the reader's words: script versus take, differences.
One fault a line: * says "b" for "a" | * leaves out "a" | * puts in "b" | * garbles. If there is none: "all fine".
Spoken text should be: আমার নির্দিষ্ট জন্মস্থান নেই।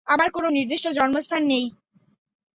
* puts in "কোন"